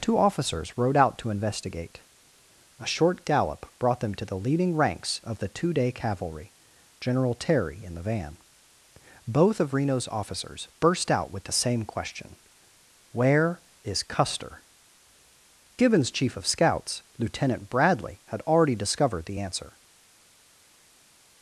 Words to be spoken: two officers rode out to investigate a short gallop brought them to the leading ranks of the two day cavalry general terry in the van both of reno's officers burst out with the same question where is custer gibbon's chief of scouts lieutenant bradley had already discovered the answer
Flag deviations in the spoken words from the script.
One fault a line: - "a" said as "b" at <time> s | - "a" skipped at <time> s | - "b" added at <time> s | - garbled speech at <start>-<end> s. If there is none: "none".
none